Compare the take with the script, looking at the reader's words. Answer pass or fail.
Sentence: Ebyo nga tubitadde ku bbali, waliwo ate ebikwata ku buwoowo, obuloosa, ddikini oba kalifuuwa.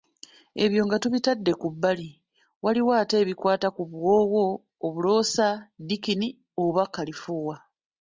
pass